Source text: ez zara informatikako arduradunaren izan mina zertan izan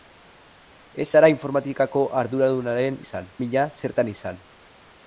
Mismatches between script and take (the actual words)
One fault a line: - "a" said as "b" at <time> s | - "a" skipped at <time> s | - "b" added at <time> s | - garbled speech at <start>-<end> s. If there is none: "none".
none